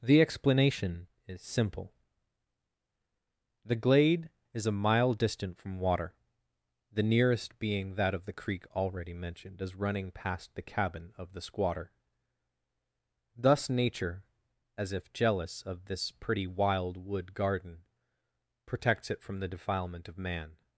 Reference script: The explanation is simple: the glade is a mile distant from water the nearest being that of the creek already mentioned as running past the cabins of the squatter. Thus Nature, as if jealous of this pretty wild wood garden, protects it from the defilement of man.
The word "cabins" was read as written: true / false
false